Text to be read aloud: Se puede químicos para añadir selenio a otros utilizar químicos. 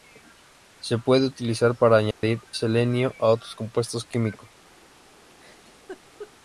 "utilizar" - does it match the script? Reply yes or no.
no